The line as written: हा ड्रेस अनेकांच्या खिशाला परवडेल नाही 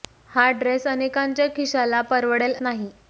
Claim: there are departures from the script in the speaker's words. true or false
false